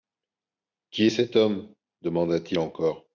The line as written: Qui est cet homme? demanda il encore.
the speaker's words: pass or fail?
fail